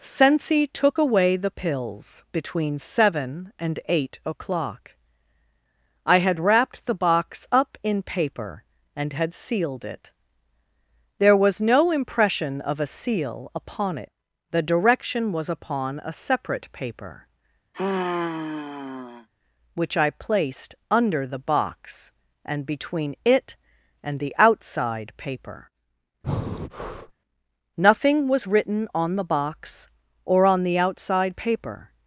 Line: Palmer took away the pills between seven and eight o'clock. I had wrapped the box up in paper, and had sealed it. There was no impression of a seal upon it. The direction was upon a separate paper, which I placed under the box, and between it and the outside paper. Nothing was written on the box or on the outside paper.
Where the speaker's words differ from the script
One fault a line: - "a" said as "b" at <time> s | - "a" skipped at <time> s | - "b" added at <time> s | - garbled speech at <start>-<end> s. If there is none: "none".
- "Palmer" said as "Sensi" at 0.0 s